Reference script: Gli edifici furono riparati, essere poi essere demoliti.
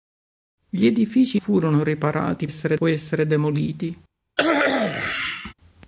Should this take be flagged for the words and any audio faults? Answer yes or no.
yes